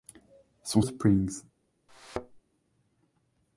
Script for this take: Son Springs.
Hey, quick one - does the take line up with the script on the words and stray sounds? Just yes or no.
no